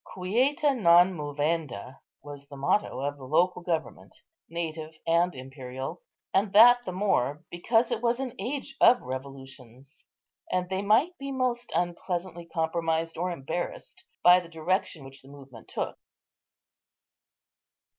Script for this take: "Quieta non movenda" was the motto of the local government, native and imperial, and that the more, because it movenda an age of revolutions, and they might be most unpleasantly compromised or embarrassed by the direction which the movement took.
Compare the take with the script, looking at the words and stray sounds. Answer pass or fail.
fail